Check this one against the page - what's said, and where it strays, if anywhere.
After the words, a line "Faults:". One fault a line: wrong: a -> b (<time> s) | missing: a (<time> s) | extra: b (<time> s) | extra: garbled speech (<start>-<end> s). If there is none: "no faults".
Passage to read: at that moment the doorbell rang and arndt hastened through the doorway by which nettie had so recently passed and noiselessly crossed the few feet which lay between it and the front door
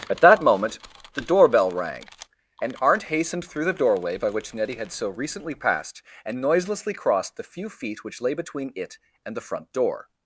at that moment the doorbell rang and arndt hastened through the doorway by which nettie had so recently passed and noiselessly crossed the few feet which lay between it and the front door
Faults:
no faults